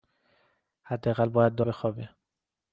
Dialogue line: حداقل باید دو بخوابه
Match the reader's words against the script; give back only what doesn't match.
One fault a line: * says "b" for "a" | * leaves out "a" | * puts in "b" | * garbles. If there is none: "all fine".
all fine